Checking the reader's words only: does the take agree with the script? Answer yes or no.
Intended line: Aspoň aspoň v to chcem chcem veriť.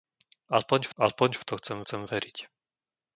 yes